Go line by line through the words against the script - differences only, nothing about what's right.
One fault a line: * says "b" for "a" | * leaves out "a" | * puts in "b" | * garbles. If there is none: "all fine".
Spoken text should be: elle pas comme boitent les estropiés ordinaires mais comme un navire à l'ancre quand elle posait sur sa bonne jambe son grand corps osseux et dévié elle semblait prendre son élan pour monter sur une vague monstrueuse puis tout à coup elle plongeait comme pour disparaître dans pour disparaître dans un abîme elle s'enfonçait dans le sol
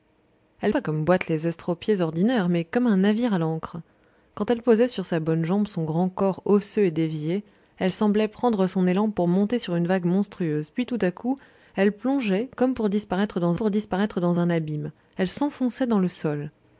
all fine